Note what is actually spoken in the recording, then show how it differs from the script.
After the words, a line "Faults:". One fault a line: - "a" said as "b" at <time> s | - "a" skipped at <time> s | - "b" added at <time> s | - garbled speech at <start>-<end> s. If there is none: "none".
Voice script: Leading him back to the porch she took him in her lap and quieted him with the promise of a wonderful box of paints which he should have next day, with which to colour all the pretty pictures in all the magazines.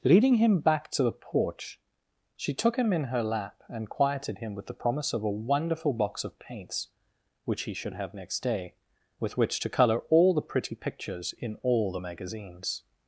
Leading him back to the porch she took him in her lap and quieted him with the promise of a wonderful box of paints which he should have next day, with which to colour all the pretty pictures in all the magazines.
Faults:
none